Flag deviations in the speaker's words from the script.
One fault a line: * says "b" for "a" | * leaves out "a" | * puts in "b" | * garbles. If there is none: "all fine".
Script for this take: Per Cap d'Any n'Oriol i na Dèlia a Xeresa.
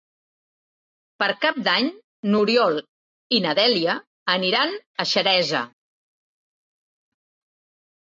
* puts in "aniran"